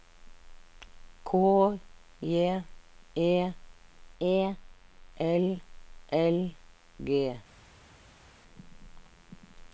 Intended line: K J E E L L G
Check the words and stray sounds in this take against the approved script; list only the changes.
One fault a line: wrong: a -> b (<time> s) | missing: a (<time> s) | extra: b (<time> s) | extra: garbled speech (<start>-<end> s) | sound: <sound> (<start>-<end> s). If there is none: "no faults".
no faults